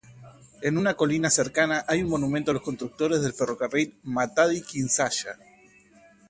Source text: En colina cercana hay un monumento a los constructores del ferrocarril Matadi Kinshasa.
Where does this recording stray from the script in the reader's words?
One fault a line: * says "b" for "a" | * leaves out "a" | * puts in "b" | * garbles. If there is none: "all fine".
* puts in "una"